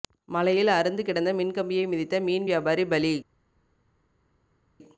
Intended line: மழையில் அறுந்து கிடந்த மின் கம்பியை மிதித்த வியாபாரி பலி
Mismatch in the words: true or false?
true